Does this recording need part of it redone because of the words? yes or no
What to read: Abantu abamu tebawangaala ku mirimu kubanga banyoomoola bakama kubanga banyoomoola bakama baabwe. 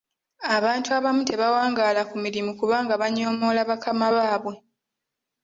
yes